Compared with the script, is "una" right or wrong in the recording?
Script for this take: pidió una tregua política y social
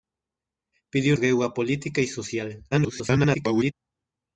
wrong